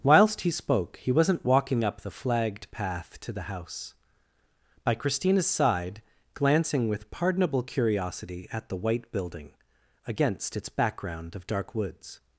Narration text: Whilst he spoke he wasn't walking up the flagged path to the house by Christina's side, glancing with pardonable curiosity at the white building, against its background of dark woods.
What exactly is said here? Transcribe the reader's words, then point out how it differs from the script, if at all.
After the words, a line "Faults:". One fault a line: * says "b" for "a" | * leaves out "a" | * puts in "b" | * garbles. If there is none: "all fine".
Whilst he spoke he wasn't walking up the flagged path to the house by Christina's side, glancing with pardonable curiosity at the white building, against its background of dark woods.
Faults:
all fine